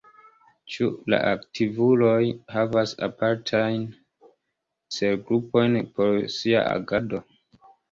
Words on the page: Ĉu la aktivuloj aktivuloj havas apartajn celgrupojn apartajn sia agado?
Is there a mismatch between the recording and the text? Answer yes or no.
yes